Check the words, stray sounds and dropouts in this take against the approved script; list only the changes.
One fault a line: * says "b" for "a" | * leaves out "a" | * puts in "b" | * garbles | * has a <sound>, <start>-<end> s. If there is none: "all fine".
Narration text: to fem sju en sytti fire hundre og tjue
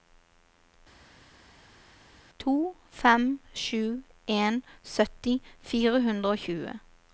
all fine